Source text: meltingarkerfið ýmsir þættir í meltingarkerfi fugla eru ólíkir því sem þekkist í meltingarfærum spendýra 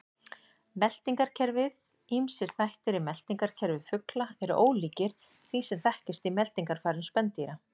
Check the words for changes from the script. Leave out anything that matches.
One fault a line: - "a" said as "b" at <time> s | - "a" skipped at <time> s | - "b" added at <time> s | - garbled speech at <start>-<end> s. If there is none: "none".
none